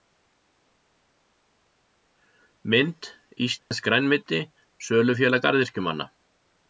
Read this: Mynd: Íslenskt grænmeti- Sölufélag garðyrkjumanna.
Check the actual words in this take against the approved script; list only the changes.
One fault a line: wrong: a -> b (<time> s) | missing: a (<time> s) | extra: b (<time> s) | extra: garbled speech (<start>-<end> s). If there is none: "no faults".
no faults